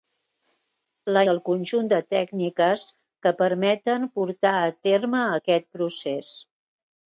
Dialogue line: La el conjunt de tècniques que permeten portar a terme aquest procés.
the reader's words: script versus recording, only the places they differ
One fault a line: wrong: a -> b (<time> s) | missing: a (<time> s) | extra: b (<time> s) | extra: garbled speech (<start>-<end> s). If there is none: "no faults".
no faults